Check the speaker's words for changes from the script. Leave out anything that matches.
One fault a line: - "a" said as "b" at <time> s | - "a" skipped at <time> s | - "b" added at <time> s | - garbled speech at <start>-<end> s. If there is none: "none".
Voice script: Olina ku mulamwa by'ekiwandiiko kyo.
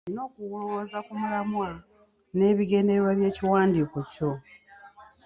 - "okulowooza" added at 0.3 s
- "n'ebigendererwa" added at 2.4 s